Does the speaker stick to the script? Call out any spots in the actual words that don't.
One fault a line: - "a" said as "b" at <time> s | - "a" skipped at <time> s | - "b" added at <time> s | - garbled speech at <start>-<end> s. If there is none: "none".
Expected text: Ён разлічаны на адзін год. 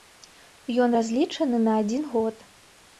none